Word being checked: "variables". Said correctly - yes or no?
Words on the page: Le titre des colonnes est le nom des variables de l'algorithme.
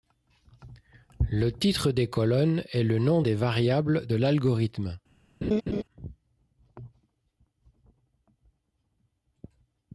yes